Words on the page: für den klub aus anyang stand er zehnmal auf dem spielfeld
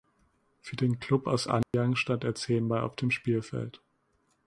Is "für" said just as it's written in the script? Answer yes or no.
yes